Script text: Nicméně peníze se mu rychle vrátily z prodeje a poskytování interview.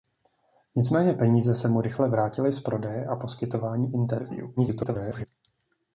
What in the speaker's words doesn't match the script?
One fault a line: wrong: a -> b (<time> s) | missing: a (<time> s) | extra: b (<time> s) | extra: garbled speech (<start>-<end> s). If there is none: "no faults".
extra: garbled speech (4.6-5.3 s)